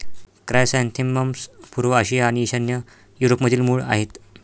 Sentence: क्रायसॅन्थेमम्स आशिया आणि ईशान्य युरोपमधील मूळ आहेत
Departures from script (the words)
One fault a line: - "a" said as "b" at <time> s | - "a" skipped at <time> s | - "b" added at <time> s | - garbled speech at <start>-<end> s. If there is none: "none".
- "पूर्व" added at 1.8 s